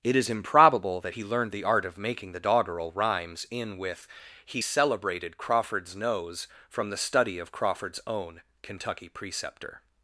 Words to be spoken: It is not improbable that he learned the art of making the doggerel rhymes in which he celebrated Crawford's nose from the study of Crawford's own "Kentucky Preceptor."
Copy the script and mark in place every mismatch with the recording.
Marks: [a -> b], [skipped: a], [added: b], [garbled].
It is [skipped: not] improbable that he learned the art of making the doggerel rhymes in [which -> with] he celebrated Crawford's nose from the study of Crawford's own "Kentucky Preceptor."